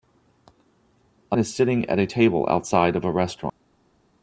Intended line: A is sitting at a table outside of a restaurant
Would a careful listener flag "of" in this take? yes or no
no